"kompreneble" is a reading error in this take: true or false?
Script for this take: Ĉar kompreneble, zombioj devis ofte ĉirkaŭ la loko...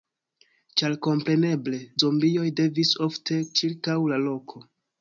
false